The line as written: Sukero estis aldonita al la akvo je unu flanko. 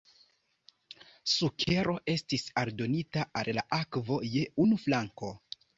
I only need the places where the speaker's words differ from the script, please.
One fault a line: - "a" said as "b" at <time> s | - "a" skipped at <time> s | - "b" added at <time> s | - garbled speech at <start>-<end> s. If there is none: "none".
none